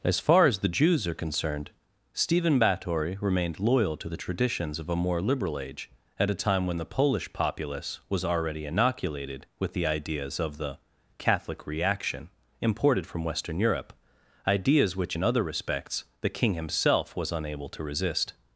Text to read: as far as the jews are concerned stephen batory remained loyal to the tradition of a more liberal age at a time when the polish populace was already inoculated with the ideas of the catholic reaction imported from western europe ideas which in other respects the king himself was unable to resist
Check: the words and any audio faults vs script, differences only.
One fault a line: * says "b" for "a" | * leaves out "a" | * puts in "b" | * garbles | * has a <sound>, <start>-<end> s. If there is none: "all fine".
* says "traditions" for "tradition"